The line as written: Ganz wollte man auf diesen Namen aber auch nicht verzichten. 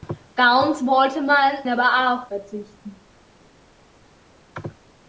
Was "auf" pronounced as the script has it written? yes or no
no